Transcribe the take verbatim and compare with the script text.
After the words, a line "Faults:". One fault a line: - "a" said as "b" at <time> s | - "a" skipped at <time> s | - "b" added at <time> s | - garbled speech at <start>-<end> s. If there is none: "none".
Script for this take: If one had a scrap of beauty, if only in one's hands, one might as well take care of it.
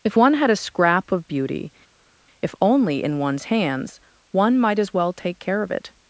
If one had a scrap of beauty, if only in one's hands, one might as well take care of it.
Faults:
none